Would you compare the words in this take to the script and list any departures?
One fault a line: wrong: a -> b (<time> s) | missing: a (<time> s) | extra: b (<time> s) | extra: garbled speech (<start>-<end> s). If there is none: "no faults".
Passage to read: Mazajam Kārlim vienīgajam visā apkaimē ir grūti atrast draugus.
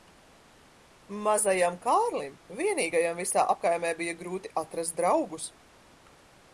wrong: ir -> bija (4.0 s)